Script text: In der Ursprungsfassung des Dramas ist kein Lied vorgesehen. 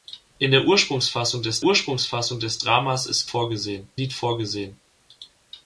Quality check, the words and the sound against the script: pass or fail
fail